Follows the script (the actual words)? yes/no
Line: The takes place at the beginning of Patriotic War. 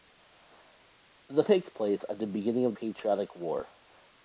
yes